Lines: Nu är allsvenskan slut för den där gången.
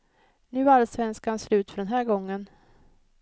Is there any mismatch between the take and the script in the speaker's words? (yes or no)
yes